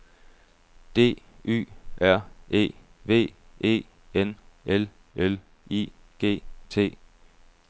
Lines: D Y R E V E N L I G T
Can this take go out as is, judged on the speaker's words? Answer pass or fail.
fail